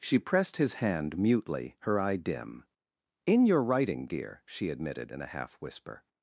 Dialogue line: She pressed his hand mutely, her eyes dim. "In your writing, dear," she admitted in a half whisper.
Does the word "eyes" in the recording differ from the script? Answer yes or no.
yes